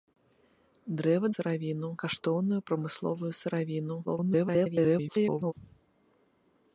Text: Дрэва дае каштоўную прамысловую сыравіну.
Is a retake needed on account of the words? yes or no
yes